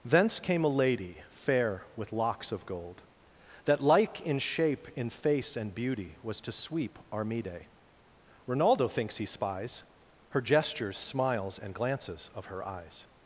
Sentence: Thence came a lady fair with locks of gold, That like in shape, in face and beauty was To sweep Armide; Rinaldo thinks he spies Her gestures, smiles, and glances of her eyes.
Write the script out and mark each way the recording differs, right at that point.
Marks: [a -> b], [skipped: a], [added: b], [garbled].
Thence came a lady fair with locks of gold, That like in shape, in face and beauty was To sweep Armide; Rinaldo thinks he spies Her gestures, smiles, and glances of her eyes.